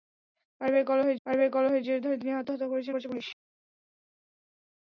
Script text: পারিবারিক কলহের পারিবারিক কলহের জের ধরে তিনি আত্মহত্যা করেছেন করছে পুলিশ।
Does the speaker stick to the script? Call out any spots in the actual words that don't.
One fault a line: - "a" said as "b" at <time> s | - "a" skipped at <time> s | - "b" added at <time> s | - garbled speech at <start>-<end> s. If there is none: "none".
none